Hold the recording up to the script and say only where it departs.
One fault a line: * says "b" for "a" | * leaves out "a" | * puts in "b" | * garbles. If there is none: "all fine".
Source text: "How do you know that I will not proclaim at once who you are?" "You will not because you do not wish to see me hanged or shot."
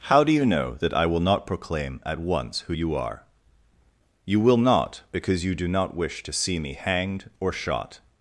all fine